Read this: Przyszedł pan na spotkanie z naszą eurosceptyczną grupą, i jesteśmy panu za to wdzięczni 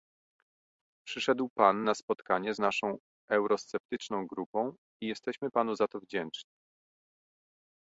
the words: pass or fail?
pass